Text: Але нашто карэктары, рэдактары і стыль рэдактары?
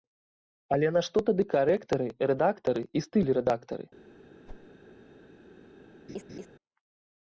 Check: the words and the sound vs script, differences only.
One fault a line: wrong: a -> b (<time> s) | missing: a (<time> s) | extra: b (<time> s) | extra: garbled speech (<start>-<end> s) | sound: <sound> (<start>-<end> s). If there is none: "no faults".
extra: тады (1.3 s)
sound: whoosh (4.5-4.7 s)
sound: laugh (6.1-6.5 s)